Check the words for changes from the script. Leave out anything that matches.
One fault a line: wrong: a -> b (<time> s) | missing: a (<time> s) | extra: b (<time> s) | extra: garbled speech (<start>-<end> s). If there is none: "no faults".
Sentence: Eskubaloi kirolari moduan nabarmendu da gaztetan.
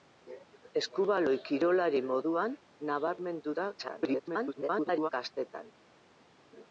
extra: garbled speech (3.8-5.1 s)